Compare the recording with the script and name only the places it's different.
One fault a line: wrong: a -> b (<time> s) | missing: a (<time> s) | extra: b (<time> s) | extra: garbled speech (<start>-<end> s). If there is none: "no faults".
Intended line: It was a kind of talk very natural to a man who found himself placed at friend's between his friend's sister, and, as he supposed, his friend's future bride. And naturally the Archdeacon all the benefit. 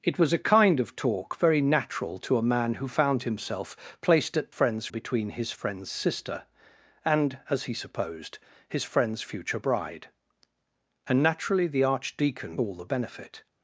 no faults